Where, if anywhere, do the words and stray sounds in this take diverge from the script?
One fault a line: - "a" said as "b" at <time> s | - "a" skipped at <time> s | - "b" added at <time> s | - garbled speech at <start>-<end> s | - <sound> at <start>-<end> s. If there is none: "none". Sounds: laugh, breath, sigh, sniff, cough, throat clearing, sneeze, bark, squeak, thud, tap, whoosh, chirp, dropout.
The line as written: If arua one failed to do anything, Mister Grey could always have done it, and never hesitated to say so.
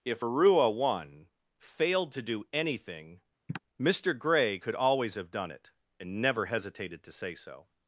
- sigh at 3.5-3.6 s